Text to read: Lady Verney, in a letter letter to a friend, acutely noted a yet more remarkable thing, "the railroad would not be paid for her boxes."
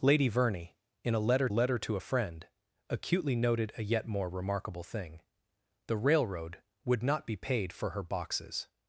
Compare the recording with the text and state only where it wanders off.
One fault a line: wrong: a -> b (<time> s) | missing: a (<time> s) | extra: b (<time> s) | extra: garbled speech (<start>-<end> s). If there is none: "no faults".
no faults